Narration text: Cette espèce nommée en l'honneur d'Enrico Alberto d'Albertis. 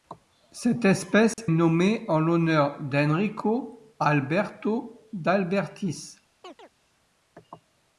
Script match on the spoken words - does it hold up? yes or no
yes